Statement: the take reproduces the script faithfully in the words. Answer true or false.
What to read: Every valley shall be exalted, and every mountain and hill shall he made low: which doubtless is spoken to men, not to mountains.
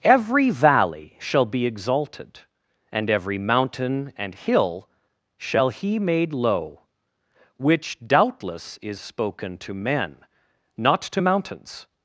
true